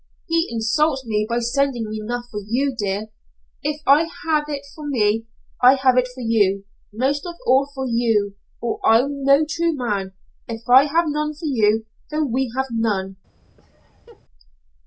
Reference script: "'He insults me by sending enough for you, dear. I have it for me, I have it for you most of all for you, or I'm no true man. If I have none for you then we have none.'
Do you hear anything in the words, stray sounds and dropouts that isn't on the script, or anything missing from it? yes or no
yes